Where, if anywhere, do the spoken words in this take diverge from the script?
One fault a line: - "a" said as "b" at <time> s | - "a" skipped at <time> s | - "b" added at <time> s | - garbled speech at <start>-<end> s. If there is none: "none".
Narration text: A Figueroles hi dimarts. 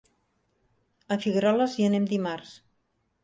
- "anem" added at 1.9 s